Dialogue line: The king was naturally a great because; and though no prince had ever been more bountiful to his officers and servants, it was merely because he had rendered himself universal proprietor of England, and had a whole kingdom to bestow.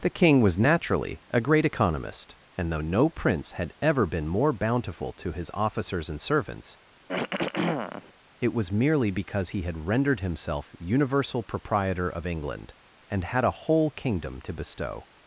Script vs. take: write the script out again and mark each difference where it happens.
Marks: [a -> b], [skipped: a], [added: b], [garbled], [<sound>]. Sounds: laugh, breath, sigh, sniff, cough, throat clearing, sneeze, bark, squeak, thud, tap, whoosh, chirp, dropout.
The king was naturally a great [because; -> economist] and though no prince had ever been more bountiful to his officers and servants, [throat clearing] it was merely because he had rendered himself universal proprietor of England, and had a whole kingdom to bestow.